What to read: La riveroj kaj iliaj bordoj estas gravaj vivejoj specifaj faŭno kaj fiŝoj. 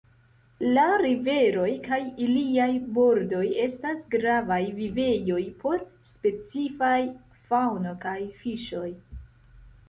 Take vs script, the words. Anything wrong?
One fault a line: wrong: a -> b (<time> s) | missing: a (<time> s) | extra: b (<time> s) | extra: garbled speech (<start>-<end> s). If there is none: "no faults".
extra: por (5.6 s)